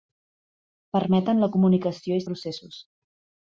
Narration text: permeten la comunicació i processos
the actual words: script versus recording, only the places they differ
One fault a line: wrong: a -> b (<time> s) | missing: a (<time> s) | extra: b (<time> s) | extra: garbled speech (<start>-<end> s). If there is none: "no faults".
no faults